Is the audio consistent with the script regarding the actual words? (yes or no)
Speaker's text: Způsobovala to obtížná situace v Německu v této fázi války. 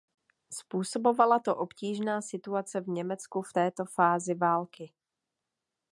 yes